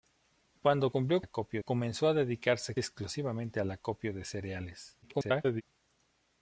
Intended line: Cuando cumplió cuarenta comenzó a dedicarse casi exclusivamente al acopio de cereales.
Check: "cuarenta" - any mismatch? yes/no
yes